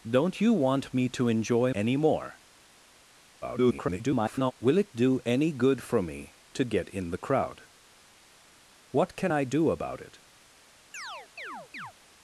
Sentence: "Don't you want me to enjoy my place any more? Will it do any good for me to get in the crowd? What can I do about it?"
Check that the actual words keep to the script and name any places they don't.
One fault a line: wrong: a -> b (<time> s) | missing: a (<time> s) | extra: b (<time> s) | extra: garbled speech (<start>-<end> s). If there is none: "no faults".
missing: my place (1.7 s)
extra: garbled speech (3.4-4.5 s)